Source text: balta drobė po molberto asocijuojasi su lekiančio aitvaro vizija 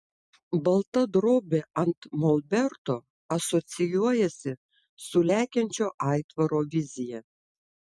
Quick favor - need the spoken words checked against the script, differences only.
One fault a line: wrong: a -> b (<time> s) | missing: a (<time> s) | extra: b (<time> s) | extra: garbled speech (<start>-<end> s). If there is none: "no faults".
wrong: po -> ant (1.8 s)